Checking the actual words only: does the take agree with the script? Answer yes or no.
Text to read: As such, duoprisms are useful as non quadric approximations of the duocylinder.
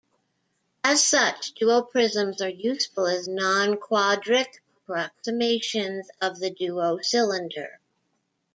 yes